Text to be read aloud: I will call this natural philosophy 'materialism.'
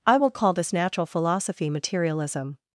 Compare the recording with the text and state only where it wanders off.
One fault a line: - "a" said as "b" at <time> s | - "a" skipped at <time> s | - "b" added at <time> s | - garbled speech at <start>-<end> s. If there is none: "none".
none